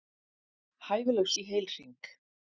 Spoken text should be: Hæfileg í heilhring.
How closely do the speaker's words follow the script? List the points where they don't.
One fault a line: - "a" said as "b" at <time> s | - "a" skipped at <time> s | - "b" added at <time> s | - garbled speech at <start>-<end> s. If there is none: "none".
none